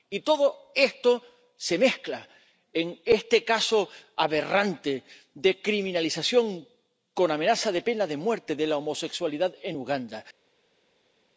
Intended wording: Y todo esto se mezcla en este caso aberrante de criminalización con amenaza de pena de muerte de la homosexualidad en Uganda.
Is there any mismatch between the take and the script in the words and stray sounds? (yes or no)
no